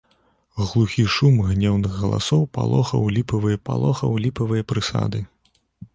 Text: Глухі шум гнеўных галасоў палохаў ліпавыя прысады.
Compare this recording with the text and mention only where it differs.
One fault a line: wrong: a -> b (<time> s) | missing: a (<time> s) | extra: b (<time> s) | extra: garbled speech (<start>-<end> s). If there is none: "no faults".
extra: палохаў ліпавыя (3.7 s)